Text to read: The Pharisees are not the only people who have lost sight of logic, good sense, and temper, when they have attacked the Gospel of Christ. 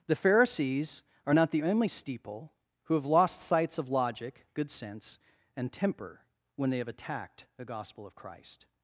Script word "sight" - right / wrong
wrong